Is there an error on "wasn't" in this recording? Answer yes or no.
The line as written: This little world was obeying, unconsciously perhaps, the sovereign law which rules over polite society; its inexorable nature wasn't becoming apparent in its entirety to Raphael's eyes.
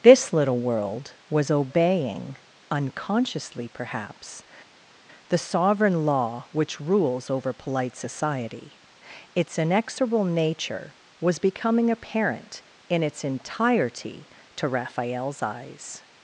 yes